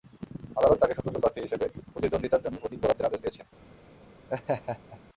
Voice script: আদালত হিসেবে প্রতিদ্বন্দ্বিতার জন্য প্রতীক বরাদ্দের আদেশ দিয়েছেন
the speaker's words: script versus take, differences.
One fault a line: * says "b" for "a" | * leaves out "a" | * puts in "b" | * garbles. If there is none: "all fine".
* puts in "তাঁকে স্বতন্ত্র প্রার্থী"